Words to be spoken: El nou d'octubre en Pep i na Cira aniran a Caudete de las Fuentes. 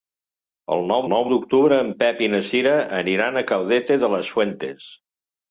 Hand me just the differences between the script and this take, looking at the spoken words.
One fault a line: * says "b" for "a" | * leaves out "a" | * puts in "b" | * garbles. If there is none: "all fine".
* puts in "nou"